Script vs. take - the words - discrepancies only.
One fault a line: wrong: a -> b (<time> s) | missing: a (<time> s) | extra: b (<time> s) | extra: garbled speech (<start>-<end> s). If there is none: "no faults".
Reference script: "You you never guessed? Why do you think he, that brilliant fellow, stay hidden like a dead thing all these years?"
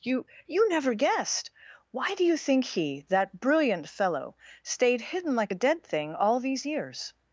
wrong: stay -> stayed (4.6 s)